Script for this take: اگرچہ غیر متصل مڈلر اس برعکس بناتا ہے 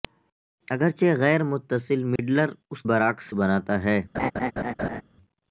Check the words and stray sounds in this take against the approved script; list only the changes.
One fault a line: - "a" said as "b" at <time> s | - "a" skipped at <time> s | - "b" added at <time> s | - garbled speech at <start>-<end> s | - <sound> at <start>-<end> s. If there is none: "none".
- dropout at 2.2-2.2 s
- laugh at 4.1-5.0 s